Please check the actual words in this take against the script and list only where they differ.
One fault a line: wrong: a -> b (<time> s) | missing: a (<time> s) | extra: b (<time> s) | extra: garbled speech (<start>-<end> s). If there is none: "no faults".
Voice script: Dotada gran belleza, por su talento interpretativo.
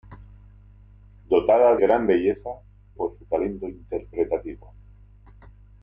no faults